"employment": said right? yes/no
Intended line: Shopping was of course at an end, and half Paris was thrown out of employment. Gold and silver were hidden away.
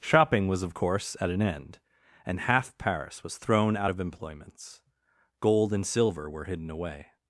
no